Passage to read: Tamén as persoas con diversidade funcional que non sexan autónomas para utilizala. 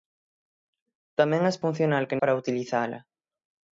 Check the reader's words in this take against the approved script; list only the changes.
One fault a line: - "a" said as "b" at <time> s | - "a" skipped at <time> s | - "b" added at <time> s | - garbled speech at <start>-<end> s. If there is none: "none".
- "persoas con diversidade" skipped at 1.6 s
- "non sexan autónomas" skipped at 2.2 s